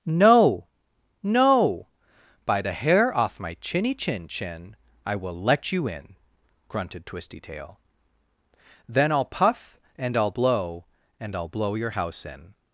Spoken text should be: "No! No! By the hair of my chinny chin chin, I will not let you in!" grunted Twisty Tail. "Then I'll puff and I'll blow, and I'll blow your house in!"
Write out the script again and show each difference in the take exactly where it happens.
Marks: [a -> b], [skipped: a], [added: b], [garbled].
"No! No! By the hair [of -> off] my chinny chin chin, I will [skipped: not] let you in!" grunted Twisty Tail. "Then I'll puff and I'll blow, and I'll blow your house in!"